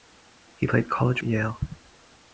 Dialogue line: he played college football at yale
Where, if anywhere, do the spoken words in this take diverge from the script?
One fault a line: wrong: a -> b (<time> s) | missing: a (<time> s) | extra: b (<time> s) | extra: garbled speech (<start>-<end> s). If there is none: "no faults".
missing: football (1.2 s)